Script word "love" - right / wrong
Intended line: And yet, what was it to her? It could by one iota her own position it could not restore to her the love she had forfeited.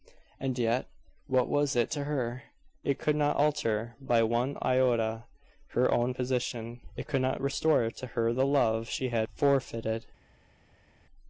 right